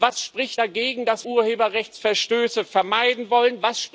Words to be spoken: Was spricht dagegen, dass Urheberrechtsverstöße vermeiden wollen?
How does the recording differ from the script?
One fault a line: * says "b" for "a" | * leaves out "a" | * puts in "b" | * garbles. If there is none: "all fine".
all fine